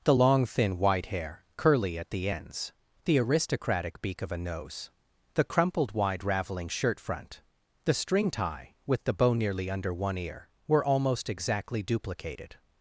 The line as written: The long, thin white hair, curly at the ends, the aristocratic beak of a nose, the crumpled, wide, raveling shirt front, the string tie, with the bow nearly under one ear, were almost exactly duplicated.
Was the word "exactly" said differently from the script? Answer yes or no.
no